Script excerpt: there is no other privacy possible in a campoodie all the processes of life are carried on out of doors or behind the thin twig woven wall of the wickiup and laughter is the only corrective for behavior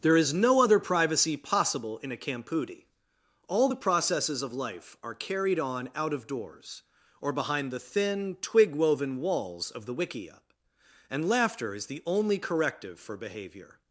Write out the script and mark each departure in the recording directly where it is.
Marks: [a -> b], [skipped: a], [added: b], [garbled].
there is no other privacy possible in a campoodie all the processes of life are carried on out of doors or behind the thin twig woven [wall -> walls] of the wickiup and laughter is the only corrective for behavior